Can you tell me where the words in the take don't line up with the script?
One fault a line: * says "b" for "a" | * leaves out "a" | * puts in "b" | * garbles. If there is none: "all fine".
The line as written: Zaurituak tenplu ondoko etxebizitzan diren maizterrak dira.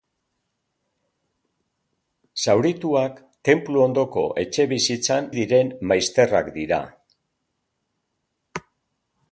all fine